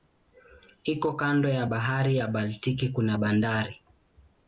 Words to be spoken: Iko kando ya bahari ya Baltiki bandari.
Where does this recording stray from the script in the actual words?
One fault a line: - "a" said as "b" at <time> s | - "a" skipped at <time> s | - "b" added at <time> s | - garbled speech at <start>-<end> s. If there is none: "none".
- "kuna" added at 2.9 s